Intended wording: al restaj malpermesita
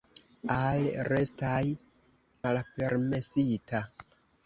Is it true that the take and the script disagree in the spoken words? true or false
false